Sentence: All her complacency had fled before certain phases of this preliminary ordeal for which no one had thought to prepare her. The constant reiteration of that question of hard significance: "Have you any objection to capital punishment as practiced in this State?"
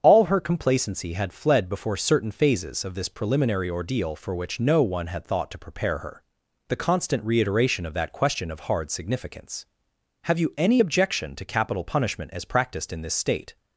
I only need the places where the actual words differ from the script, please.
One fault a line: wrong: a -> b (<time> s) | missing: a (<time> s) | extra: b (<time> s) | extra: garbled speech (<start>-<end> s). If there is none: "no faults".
no faults